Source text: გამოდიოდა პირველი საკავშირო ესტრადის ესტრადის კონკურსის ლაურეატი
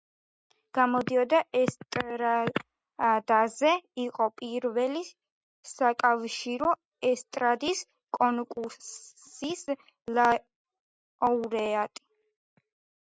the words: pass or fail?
fail